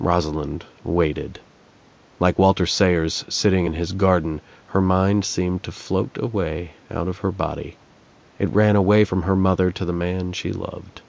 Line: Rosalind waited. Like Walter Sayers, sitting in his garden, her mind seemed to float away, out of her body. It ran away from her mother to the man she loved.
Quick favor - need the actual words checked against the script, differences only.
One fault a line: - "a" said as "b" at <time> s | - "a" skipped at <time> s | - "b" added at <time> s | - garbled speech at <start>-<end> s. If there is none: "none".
none